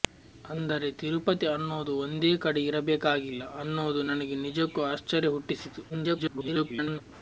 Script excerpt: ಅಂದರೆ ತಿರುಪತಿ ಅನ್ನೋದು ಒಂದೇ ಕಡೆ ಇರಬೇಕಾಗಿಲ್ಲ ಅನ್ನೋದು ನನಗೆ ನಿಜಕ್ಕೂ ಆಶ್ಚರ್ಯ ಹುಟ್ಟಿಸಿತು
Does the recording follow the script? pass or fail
fail